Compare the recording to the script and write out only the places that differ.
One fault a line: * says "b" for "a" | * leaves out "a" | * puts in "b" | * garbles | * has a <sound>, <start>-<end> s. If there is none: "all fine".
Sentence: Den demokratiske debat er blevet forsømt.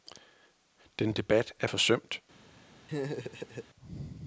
* leaves out "demokratiske"
* leaves out "blevet"
* has a laugh, 2.9-3.7 s